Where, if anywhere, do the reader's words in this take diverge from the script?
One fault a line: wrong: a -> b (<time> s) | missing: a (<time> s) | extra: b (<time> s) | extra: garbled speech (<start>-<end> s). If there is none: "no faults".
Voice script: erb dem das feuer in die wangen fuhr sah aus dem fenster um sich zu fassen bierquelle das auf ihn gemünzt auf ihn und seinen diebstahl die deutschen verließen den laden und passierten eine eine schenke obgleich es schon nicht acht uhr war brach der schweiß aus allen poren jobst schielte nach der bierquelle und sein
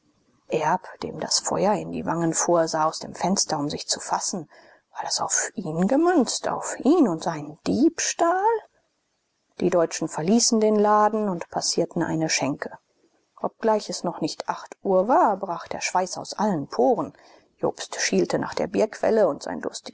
wrong: bierquelle -> war (4.9 s)
missing: eine (12.3 s)
wrong: schon -> noch (14.0 s)